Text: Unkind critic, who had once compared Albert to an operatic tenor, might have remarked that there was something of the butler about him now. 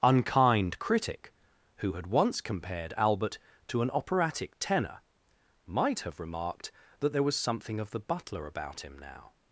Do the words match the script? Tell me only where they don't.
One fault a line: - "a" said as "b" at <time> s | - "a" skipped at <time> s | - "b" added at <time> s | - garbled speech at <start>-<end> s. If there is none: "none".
none